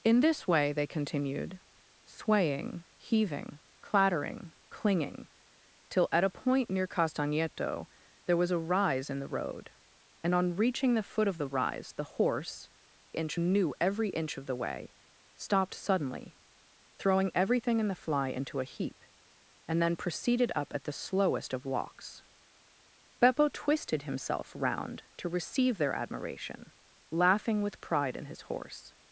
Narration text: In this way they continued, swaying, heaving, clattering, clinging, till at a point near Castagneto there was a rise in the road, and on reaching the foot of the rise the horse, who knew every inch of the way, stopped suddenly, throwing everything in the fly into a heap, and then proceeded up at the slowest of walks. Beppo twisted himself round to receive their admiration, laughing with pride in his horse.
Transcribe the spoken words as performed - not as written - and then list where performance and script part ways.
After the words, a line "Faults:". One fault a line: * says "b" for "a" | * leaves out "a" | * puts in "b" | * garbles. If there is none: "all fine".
In this way they continued, swaying, heaving, clattering, clinging, till at a point near Castagneto there was a rise in the road, and on reaching the foot of the rise the horse, inch knew every inch of the way, stopped suddenly, throwing everything in the fly into a heap, and then proceeded up at the slowest of walks. Beppo twisted himself round to receive their admiration, laughing with pride in his horse.
Faults:
* says "inch" for "who"